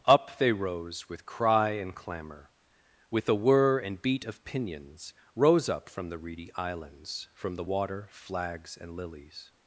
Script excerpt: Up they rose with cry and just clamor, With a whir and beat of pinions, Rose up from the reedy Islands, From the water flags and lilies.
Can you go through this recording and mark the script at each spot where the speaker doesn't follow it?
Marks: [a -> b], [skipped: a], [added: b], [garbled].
Up they rose with cry and [skipped: just] clamor, With a whir and beat of pinions, Rose up from the reedy Islands, From the water flags and lilies.